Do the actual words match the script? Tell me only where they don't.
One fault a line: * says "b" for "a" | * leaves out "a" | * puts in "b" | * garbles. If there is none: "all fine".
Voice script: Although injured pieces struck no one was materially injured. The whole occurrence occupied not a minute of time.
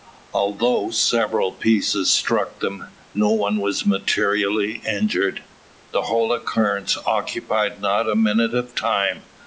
* says "several" for "injured"
* puts in "them"